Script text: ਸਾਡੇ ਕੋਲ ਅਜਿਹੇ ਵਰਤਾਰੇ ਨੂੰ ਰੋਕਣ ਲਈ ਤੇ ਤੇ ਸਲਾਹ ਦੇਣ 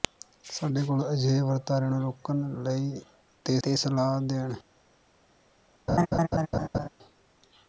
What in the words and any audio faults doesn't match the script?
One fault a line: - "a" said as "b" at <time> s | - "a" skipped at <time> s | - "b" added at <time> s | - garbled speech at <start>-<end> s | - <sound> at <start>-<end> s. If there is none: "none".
- laugh at 5.9-6.9 s